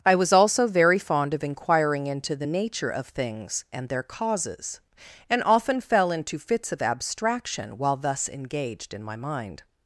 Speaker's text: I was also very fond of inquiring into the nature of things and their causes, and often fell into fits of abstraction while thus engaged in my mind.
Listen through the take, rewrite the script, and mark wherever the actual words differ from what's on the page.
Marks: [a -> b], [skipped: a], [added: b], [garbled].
I was also very fond of inquiring into the nature of things and their causes, and often fell into fits of abstraction while thus engaged in my mind.